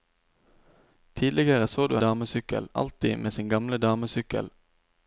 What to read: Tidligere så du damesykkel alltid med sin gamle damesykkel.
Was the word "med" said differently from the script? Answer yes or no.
no